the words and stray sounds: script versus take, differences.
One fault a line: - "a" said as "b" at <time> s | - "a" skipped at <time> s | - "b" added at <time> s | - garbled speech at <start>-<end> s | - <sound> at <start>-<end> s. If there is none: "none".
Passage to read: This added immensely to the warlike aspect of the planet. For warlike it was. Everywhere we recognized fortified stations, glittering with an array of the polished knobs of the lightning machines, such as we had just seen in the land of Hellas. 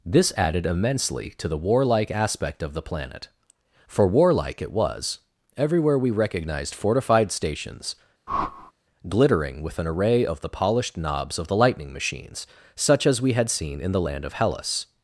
- whoosh at 8.3-8.7 s
- "just" skipped at 13.5 s